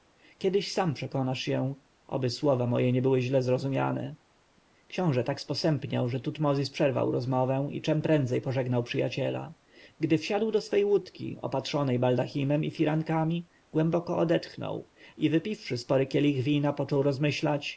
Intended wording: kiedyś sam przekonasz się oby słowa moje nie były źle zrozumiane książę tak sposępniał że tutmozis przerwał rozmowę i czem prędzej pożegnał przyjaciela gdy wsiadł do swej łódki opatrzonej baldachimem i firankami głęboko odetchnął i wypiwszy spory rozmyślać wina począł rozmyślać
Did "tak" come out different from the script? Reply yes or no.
no